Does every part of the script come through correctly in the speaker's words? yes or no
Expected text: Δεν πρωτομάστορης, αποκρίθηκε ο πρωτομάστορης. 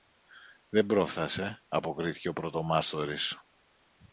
no